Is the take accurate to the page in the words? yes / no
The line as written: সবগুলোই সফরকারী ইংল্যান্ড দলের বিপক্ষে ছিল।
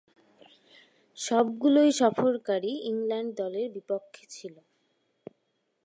yes